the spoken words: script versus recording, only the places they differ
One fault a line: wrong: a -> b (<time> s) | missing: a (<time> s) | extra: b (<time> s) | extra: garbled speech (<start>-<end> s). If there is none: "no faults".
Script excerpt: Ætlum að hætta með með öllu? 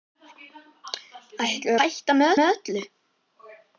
no faults